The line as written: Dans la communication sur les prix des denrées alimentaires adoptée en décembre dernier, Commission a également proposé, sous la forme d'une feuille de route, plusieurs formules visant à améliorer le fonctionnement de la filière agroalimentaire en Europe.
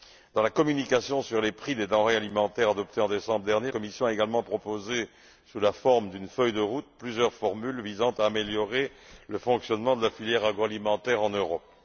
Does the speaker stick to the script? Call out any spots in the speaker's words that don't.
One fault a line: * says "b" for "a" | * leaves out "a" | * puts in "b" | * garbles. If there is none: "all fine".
all fine